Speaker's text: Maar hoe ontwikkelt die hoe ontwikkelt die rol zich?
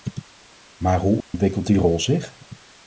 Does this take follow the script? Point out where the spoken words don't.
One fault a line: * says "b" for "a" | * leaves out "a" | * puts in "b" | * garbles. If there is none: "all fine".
* leaves out "hoe ontwikkelt die"